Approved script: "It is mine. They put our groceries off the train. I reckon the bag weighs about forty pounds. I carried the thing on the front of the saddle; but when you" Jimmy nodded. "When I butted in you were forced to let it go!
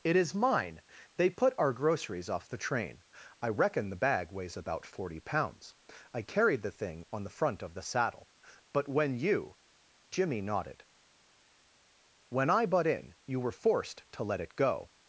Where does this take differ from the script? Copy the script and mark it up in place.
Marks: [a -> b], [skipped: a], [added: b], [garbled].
"It is mine. They put our groceries off the train. I reckon the bag weighs about forty pounds. I carried the thing on the front of the saddle; but when you" Jimmy nodded. "When I [butted -> butt] in you were forced to let it go!